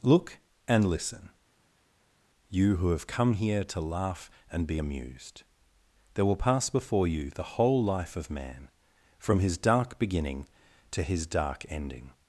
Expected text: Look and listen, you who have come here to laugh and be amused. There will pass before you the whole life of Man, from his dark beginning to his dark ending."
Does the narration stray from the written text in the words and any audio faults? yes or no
no